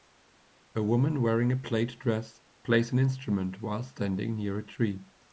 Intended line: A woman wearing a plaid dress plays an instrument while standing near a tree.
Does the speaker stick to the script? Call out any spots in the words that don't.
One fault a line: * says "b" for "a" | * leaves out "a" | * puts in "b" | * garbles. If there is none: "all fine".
all fine